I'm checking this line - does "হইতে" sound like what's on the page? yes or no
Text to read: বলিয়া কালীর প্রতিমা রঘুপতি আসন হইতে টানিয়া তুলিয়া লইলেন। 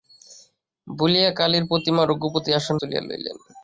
no